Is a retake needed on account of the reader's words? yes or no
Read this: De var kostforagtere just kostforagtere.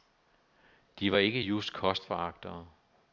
yes